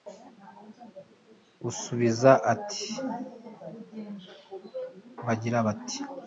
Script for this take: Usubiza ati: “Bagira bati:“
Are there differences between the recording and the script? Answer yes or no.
no